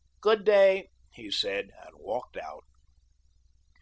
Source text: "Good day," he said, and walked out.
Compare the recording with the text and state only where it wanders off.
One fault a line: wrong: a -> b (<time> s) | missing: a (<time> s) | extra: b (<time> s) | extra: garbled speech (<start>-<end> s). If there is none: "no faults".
no faults